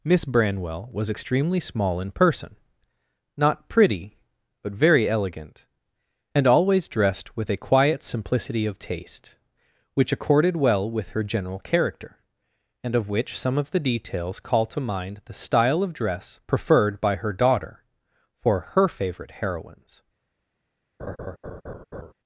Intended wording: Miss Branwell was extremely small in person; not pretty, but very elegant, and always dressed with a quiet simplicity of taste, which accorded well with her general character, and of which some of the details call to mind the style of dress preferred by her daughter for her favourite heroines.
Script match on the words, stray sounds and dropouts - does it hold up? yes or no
no